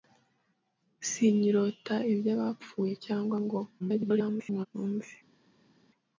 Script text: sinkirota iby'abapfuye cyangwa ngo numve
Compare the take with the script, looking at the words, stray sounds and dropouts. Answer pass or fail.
fail